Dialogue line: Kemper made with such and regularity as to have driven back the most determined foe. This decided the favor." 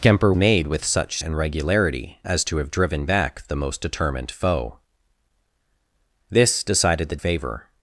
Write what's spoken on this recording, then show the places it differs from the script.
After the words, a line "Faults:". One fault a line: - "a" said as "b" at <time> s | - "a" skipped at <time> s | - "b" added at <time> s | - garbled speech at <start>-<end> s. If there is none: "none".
Kemper made with such and regularity as to have driven back the most determined foe. This decided the favor."
Faults:
none